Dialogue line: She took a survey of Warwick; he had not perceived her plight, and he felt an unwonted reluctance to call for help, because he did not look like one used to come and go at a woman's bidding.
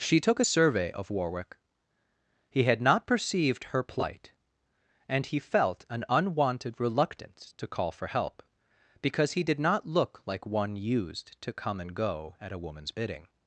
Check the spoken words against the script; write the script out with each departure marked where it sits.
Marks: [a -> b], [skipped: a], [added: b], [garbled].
She took a survey of Warwick; he had not perceived her plight, and he felt an unwonted reluctance to call for help, because he did not look like one used to come and go at a woman's bidding.